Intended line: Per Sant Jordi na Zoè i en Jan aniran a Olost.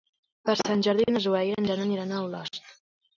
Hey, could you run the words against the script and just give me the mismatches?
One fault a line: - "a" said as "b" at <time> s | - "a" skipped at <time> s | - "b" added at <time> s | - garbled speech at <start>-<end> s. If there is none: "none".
none